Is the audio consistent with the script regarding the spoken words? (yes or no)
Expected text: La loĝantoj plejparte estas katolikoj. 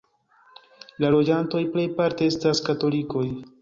yes